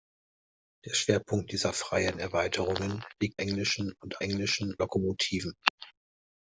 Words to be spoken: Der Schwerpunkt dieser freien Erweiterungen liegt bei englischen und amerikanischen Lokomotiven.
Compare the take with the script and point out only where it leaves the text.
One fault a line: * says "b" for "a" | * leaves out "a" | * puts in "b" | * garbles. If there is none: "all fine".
* leaves out "bei"
* says "englischen" for "amerikanischen"